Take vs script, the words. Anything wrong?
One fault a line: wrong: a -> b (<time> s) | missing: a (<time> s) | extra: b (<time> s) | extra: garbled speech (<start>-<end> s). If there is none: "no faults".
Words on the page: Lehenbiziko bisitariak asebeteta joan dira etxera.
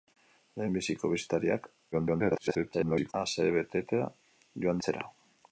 extra: garbled speech (1.9-3.1 s)
missing: dira (4.8 s)